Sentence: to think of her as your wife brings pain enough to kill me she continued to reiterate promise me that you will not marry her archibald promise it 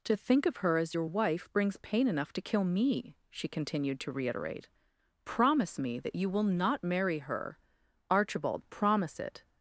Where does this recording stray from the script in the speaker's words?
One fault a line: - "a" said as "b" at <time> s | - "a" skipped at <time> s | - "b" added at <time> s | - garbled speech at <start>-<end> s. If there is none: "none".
none